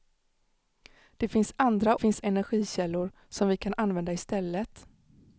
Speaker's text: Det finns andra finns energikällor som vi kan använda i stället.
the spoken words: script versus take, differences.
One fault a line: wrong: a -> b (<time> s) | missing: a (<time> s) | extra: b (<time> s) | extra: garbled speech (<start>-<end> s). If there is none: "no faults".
no faults